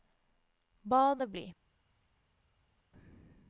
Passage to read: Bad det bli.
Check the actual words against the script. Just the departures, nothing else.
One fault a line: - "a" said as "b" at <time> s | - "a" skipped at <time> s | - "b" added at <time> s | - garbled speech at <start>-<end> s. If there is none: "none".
none